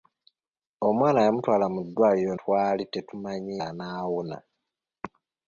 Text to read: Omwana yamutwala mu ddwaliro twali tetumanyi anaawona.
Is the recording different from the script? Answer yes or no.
no